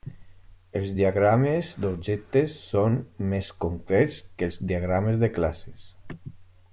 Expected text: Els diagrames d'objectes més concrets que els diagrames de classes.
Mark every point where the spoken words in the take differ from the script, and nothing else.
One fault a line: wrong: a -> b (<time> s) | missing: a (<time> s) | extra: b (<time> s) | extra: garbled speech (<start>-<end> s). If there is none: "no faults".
extra: són (2.7 s)